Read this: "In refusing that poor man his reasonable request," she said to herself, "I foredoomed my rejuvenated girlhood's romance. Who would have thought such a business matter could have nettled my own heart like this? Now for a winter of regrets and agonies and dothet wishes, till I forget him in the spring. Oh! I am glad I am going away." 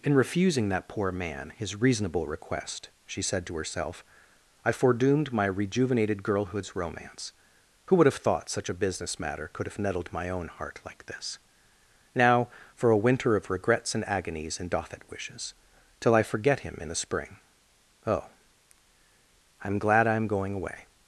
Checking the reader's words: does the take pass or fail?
pass